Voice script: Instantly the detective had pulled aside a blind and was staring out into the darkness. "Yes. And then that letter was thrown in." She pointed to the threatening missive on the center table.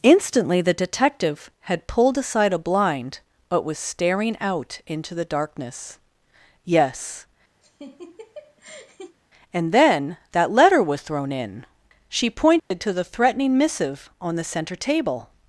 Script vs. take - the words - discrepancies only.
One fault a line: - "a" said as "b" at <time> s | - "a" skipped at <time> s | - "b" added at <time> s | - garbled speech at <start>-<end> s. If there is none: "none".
- "and" said as "but" at 3.5 s